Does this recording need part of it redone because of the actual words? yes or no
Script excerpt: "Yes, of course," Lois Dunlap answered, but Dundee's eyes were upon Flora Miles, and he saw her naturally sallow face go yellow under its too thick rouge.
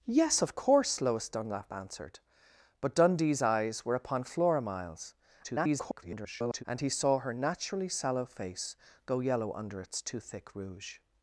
yes